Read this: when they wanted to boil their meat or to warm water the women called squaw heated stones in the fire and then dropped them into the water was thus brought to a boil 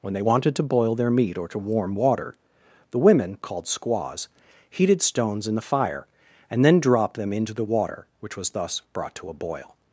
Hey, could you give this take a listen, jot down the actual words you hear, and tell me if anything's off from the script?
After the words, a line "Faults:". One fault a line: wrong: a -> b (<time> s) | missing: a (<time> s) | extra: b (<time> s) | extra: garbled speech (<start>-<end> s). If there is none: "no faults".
when they wanted to boil their meat or to warm water the women called squaws heated stones in the fire and then dropped them into the water which was thus brought to a boil
Faults:
wrong: squaw -> squaws (3.7 s)
extra: which (8.2 s)